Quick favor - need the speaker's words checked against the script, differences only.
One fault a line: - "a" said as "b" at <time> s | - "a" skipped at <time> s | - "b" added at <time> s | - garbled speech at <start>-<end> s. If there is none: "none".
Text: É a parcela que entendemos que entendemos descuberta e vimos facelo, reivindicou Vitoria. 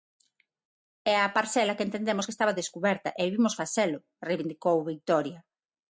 - "entendemos" said as "estaba" at 2.3 s